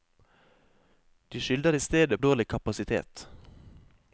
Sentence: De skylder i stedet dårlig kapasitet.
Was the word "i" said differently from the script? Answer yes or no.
no